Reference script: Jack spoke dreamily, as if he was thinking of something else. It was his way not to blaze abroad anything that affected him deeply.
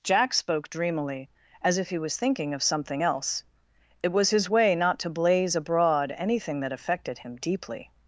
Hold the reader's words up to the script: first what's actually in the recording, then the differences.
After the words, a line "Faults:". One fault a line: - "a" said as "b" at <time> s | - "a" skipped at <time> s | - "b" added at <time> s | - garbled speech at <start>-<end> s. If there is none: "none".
Jack spoke dreamily, as if he was thinking of something else. It was his way not to blaze abroad anything that affected him deeply.
Faults:
none